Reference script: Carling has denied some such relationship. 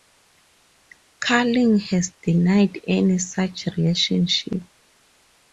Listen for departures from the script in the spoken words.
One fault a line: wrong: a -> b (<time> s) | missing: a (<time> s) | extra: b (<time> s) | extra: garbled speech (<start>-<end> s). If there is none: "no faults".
wrong: some -> any (2.9 s)